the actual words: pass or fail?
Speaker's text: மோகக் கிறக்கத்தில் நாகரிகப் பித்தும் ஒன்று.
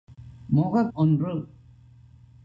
fail